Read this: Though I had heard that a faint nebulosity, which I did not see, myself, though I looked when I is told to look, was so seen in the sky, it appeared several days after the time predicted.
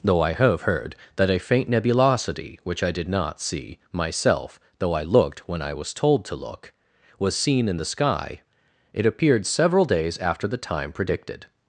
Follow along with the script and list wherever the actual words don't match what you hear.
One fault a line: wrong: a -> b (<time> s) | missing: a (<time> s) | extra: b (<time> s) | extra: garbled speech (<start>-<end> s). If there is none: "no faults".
wrong: had -> have (0.3 s)
wrong: is -> was (5.7 s)
missing: so (7.3 s)